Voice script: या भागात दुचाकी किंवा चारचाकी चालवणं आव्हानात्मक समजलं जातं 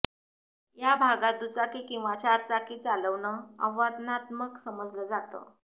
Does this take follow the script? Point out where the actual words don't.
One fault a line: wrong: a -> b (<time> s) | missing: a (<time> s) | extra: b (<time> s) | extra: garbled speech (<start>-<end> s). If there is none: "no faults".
no faults